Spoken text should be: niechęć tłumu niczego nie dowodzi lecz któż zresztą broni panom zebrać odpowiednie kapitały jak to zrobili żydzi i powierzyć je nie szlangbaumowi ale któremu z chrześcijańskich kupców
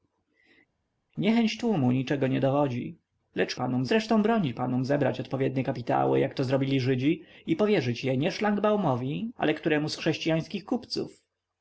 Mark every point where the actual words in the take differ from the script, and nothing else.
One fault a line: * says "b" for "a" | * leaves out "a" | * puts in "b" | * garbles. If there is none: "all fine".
* says "panom" for "któż"